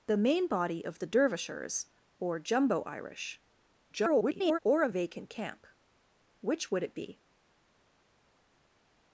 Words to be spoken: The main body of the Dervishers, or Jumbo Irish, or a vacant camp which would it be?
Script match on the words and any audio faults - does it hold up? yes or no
no